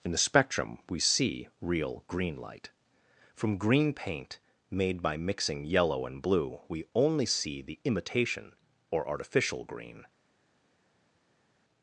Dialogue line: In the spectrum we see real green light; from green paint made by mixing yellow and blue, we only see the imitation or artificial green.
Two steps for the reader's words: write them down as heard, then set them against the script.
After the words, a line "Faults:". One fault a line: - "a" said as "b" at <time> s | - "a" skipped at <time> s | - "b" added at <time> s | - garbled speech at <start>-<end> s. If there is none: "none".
In the spectrum we see real green light; from green paint made by mixing yellow and blue, we only see the imitation or artificial green.
Faults:
none